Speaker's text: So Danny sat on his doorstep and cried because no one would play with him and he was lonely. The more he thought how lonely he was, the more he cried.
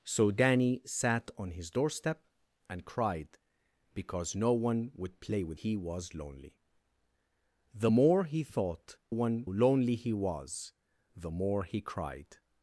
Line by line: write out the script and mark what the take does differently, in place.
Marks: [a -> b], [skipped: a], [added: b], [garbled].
So Danny sat on his doorstep and cried because no one would play with [skipped: him and] he was lonely. The more he thought [how -> one] lonely he was, the more he cried.